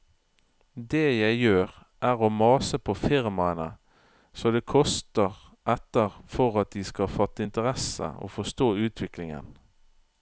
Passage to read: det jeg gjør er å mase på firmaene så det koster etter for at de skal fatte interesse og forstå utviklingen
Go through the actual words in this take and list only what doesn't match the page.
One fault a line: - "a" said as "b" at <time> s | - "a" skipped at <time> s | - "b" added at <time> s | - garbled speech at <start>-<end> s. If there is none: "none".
none